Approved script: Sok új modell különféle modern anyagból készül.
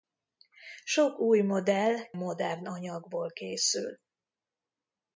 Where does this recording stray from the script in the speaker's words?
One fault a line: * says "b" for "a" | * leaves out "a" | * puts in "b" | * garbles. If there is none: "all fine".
* leaves out "különféle"